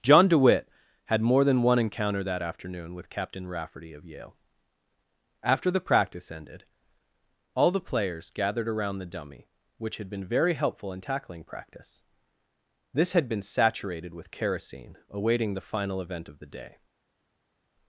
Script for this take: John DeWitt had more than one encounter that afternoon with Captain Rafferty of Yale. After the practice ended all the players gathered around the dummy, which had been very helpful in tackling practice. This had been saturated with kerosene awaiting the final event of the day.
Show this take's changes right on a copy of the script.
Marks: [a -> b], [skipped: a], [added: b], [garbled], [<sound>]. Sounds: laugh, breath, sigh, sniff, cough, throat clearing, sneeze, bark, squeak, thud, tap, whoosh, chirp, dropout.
John DeWitt had more than one encounter that afternoon with Captain Rafferty of Yale. After the practice ended all the players gathered around the dummy, which had been very helpful in tackling practice. This had been saturated with kerosene awaiting the final event of the day.